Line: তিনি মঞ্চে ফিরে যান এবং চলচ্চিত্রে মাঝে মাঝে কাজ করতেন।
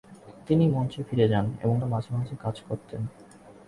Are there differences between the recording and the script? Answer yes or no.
yes